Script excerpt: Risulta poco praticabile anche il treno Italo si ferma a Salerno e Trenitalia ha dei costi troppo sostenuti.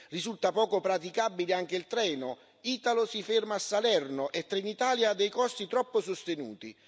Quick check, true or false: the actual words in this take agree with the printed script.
true